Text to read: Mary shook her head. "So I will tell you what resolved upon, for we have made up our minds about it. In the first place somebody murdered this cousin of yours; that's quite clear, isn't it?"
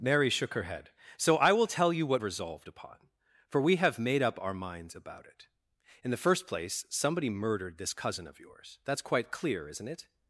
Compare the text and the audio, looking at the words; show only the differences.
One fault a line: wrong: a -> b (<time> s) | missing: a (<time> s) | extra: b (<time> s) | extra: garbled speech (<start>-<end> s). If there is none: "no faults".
no faults